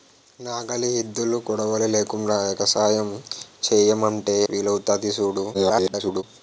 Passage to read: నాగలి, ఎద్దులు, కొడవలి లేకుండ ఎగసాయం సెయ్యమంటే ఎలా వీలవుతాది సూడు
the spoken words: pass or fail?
fail